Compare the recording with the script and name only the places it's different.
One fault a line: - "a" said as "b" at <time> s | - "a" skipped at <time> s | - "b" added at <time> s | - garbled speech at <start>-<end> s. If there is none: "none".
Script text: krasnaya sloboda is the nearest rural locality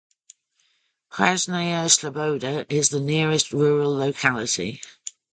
none